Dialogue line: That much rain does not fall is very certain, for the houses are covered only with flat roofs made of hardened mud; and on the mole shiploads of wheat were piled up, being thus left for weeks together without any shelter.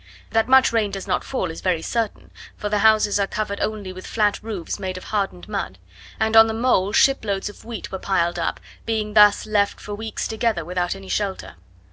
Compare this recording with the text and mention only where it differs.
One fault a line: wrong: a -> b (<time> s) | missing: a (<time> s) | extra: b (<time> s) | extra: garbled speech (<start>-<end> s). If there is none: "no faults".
no faults